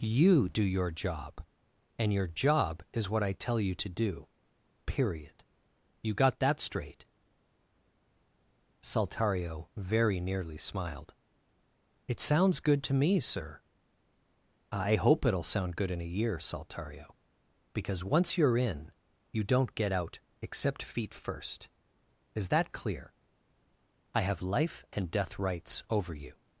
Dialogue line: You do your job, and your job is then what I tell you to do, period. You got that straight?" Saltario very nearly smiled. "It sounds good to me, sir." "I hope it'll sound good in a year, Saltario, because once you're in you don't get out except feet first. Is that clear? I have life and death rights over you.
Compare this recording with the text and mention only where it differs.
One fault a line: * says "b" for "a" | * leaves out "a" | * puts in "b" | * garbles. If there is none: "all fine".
* leaves out "then"